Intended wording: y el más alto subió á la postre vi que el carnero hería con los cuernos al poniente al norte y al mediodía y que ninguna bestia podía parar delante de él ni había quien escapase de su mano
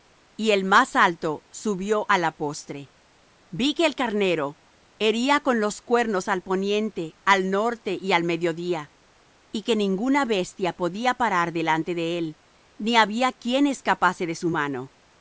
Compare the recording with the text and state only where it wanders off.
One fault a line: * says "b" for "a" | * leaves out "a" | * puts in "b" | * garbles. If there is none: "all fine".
all fine